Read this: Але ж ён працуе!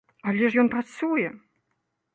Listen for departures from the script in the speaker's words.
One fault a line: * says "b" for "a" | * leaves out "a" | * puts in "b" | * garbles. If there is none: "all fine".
all fine